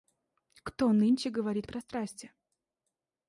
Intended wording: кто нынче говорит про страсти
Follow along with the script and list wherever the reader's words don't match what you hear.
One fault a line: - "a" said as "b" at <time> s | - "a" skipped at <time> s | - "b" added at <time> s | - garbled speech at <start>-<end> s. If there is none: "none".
none